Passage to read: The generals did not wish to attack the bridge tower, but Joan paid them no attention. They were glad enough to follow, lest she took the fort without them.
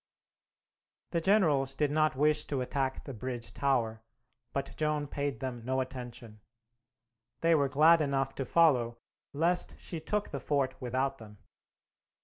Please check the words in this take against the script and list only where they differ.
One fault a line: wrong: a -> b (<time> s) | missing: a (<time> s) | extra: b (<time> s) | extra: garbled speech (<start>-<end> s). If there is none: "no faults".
no faults